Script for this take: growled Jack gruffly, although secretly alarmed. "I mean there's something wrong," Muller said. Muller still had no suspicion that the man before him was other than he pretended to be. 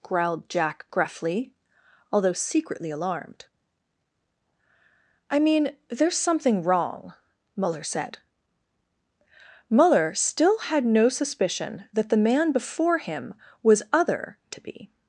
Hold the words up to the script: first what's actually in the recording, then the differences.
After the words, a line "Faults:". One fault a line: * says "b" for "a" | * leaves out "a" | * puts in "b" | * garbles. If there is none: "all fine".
growled Jack gruffly, although secretly alarmed. "I mean there's something wrong," Muller said. Muller still had no suspicion that the man before him was other to be.
Faults:
* leaves out "than he pretended"